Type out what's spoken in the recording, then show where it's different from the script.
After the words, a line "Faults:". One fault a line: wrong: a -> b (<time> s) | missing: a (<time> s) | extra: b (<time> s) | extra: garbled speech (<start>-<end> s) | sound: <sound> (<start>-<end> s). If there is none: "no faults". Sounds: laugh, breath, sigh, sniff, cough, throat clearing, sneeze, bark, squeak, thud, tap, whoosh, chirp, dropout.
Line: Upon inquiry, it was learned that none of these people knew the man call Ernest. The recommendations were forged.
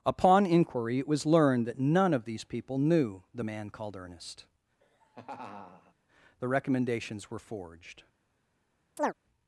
Upon inquiry, it was learned that none of these people knew the man called Ernest. The recommendations were forged.
Faults:
wrong: call -> called (3.7 s)
sound: laugh (4.8-5.9 s)
sound: chirp (9.0-9.1 s)